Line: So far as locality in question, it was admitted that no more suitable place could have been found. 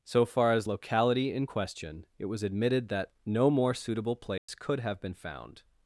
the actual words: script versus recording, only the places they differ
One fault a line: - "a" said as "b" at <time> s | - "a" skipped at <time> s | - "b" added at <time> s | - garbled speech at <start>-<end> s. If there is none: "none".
none